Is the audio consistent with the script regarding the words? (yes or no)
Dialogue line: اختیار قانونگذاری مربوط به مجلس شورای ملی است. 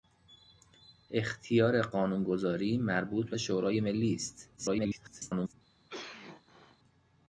no